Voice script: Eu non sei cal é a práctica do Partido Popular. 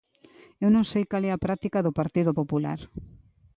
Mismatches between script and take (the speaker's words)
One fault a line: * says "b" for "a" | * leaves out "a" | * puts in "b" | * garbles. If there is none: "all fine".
all fine